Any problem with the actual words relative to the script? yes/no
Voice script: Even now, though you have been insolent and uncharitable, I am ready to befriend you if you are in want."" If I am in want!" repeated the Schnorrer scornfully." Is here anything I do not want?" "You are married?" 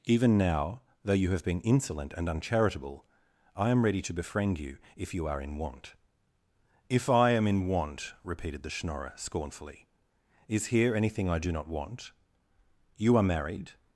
no